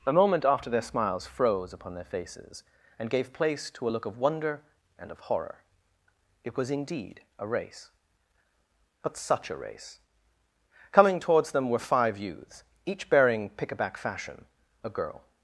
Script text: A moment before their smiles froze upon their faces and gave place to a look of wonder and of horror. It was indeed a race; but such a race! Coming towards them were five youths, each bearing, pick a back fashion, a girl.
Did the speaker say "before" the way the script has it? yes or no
no